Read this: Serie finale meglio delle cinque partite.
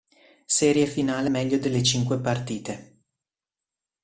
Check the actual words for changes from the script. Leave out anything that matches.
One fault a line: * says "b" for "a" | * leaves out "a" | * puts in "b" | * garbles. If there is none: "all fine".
all fine